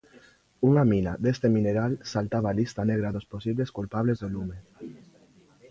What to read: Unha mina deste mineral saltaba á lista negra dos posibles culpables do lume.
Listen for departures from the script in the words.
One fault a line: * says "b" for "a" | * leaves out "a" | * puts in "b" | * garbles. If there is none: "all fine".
all fine